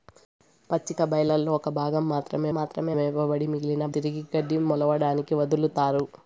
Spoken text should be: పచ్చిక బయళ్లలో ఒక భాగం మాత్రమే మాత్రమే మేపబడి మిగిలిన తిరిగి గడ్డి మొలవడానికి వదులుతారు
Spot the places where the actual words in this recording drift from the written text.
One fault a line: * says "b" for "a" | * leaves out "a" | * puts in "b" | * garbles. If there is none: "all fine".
all fine